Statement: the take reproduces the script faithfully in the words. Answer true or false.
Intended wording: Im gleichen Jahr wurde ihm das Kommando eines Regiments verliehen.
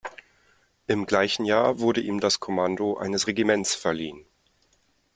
true